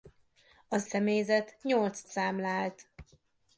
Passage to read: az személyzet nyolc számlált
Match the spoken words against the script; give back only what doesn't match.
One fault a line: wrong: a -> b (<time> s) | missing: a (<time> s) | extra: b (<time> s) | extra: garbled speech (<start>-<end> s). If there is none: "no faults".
no faults